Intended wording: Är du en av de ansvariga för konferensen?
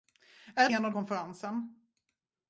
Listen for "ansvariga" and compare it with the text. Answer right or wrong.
wrong